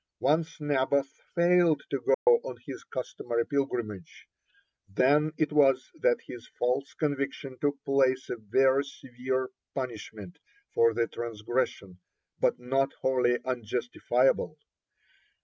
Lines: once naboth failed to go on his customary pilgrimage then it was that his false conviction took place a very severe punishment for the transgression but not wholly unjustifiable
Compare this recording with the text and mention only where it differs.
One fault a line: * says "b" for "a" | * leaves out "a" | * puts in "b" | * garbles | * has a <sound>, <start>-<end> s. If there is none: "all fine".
* has a dropout, 2.1-2.3 s